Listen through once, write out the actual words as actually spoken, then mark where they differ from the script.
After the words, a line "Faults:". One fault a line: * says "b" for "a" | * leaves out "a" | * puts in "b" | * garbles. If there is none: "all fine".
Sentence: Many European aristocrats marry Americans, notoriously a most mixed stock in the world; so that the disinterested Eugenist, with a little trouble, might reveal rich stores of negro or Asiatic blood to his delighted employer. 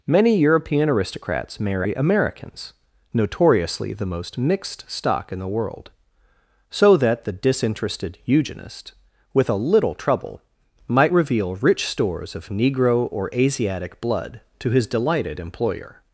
Many European aristocrats marry Americans, notoriously the most mixed stock in the world; so that the disinterested Eugenist, with a little trouble, might reveal rich stores of negro or Asiatic blood to his delighted employer.
Faults:
* says "the" for "a"